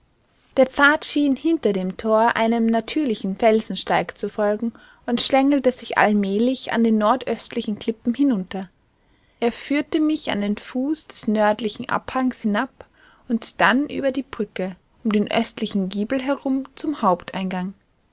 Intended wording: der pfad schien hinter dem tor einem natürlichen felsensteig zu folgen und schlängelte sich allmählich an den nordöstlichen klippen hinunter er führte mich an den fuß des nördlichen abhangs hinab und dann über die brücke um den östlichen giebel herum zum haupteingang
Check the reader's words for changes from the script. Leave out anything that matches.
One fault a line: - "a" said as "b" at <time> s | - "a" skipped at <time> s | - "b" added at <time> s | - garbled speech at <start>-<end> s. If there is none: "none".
none